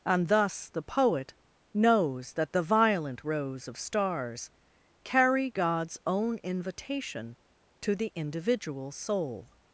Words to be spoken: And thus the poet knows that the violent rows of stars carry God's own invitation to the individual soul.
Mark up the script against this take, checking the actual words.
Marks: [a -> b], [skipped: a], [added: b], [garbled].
And thus the poet knows that the violent rows of stars carry God's own invitation to the individual soul.